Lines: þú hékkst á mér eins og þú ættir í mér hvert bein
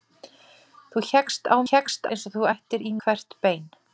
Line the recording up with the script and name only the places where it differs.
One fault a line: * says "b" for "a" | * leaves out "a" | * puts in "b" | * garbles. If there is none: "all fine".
* says "hékkst" for "mér"
* leaves out "mér"